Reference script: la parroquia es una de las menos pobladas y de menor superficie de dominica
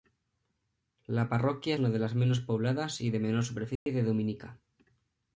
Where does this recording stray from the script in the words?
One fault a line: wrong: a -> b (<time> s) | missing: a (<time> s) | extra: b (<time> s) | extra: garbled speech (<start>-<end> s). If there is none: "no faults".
missing: es (1.8 s)